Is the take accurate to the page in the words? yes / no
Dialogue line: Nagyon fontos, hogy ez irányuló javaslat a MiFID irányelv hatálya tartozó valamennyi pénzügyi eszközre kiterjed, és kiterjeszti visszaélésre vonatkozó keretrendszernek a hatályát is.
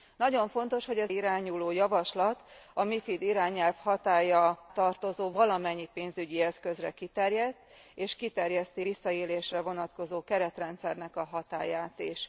yes